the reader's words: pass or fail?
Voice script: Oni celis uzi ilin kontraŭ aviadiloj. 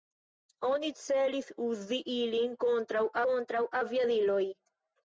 fail